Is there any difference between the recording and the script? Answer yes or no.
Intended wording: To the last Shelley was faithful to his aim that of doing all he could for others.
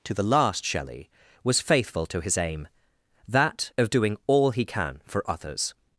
yes